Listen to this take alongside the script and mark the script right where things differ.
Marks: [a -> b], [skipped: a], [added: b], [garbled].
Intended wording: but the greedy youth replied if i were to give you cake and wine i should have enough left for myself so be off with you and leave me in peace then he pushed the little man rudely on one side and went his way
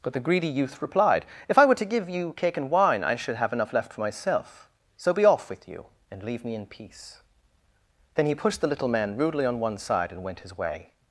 but the greedy youth replied if i were to give you cake and wine i should have enough left for myself so be off with you and leave me in peace then he pushed the little man rudely on one side and went his way